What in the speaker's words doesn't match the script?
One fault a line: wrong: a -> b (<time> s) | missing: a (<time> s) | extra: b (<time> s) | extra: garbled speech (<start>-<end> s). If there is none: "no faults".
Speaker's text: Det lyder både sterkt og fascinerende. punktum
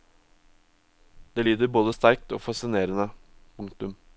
no faults